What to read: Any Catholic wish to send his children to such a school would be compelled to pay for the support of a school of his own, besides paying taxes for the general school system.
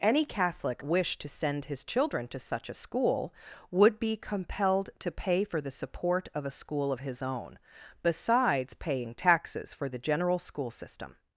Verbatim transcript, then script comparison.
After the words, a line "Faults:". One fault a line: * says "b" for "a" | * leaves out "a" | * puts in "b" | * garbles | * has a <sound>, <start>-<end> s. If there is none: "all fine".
Any Catholic wish to send his children to such a school would be compelled to pay for the support of a school of his own, besides paying taxes for the general school system.
Faults:
all fine